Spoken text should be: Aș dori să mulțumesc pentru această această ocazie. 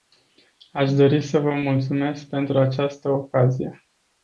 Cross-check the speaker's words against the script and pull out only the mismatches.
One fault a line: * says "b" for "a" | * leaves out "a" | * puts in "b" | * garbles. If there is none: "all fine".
* puts in "vă"
* leaves out "această"